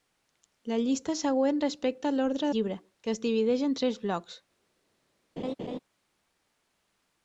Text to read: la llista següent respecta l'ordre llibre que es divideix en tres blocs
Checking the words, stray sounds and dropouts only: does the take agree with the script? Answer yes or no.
no